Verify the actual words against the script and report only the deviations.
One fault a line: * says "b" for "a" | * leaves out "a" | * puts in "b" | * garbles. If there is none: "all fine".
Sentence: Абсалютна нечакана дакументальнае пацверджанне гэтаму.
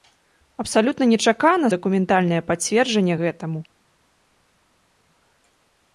all fine